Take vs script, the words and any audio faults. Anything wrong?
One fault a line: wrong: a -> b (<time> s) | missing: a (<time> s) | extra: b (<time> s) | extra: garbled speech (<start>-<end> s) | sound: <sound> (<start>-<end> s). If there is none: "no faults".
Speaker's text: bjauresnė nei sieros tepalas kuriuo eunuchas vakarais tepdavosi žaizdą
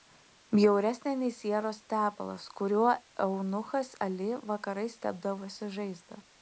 extra: ali (4.1 s)